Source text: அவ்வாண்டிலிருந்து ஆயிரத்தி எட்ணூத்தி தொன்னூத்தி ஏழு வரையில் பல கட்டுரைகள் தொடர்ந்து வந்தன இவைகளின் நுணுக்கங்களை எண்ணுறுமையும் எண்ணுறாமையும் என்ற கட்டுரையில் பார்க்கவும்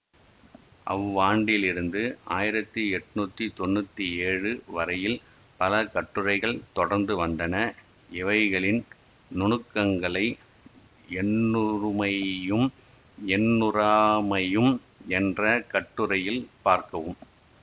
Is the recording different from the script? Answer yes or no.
no